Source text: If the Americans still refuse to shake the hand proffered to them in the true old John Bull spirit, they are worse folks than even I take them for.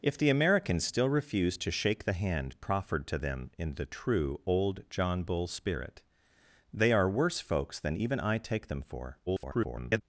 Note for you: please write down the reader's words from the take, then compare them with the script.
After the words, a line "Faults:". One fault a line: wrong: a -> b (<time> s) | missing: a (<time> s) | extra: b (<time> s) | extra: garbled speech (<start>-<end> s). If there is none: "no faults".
If the Americans still refuse to shake the hand proffered to them in the true old John Bull spirit, they are worse folks than even I take them for. [garbled]
Faults:
extra: garbled speech (9.3-10.0 s)